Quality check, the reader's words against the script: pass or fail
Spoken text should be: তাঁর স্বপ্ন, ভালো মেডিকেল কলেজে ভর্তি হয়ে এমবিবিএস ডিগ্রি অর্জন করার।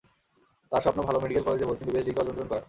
fail